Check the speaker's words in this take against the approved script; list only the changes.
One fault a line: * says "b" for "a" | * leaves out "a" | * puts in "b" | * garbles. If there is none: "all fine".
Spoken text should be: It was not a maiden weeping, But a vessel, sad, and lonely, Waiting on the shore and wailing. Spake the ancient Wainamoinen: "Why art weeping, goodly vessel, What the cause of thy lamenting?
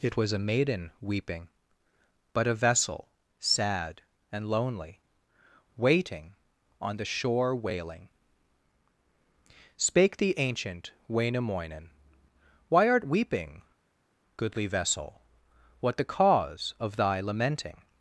* leaves out "not"
* leaves out "and"